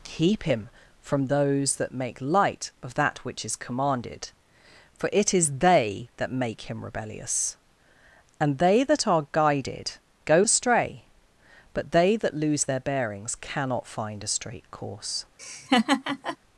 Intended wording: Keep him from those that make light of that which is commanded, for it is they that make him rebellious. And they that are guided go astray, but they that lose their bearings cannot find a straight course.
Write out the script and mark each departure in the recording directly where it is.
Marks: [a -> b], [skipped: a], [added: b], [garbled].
Keep him from those that make light of that which is commanded, for it is they that make him rebellious. And they that are guided go astray, but they that lose their bearings cannot find a straight course.